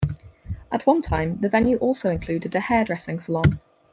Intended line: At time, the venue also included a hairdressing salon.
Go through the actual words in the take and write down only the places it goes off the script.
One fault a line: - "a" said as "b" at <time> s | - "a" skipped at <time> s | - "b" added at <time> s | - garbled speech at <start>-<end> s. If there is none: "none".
- "one" added at 0.9 s